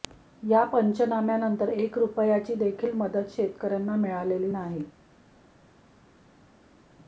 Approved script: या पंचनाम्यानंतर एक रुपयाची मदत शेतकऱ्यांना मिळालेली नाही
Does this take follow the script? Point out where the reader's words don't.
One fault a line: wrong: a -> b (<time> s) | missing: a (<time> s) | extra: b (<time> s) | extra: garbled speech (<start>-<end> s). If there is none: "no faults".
extra: देखील (2.6 s)